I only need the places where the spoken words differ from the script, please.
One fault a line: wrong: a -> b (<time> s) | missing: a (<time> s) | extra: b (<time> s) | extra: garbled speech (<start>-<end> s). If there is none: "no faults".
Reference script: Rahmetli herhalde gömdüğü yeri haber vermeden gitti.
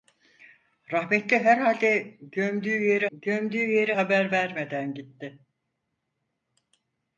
extra: gömdüğü yeri (3.1 s)